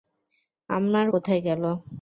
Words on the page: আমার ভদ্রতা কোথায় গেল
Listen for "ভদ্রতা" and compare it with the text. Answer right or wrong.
wrong